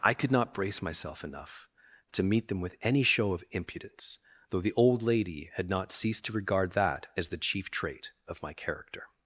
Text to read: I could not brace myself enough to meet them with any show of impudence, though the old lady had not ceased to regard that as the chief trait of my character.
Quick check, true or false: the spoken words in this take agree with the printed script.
true